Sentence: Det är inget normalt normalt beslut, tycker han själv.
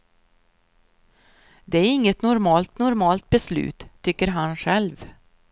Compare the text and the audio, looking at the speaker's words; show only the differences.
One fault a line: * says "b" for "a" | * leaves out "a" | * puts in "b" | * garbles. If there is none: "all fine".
all fine